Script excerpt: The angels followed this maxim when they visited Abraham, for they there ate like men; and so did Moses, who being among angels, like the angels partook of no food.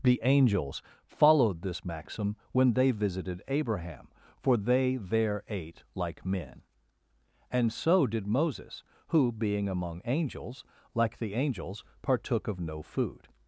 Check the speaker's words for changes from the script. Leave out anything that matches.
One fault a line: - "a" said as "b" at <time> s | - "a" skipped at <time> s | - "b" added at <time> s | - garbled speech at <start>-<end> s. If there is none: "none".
none